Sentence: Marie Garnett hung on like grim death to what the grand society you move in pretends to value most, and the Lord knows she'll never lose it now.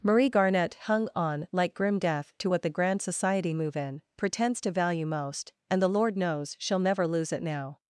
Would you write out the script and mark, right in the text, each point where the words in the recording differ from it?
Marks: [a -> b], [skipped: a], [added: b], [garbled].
Marie Garnett hung on like grim death to what the grand society [skipped: you] move in pretends to value most, and the Lord knows she'll never lose it now.